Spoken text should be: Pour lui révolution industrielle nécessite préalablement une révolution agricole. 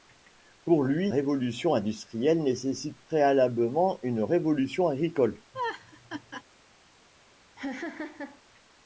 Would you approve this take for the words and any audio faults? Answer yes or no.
no